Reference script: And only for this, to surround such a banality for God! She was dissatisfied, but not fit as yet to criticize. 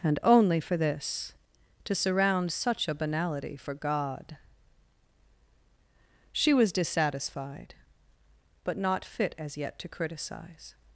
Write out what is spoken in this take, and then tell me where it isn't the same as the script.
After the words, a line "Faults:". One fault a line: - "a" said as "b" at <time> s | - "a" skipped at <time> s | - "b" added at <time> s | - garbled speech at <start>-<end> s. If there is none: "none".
And only for this, to surround such a banality for God! She was dissatisfied, but not fit as yet to criticize.
Faults:
none